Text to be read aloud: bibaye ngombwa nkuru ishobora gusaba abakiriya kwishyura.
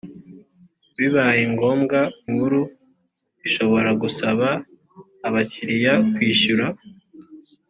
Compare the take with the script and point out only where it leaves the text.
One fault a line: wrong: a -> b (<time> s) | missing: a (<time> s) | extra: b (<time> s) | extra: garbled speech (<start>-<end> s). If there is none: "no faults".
no faults